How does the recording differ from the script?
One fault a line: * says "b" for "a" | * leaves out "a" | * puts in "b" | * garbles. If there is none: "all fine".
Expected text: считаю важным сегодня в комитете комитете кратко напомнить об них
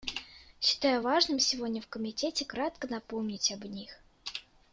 * leaves out "комитете"